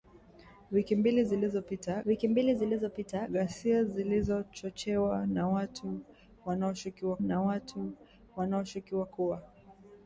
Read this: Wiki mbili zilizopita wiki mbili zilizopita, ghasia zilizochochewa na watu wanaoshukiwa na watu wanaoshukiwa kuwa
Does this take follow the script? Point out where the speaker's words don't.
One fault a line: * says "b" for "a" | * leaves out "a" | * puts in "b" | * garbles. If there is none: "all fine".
all fine